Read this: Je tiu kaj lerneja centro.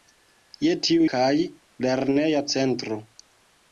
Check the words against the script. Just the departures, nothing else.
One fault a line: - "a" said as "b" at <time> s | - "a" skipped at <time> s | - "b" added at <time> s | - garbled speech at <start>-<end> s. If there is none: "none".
none